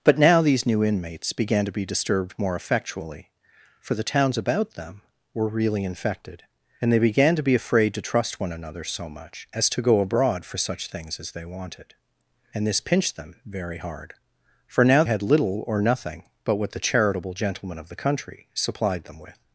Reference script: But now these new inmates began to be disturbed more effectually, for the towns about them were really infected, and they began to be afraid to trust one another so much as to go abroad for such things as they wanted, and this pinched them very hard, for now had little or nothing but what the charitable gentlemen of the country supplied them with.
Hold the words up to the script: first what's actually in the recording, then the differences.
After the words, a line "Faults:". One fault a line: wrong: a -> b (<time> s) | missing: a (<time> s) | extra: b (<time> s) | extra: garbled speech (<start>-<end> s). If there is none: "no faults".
But now these new inmates began to be disturbed more effectually, for the towns about them were really infected, and they began to be afraid to trust one another so much as to go abroad for such things as they wanted, and this pinched them very hard, for now had little or nothing but what the charitable gentlemen of the country supplied them with.
Faults:
no faults